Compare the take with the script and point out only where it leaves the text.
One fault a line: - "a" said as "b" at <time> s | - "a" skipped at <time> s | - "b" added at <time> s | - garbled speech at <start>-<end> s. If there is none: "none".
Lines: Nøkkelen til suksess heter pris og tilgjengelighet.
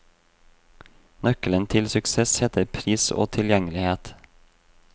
none